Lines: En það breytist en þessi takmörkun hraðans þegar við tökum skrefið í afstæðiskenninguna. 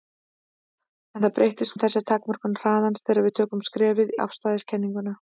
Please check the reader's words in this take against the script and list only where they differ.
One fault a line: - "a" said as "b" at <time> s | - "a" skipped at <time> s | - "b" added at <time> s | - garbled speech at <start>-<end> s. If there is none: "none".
none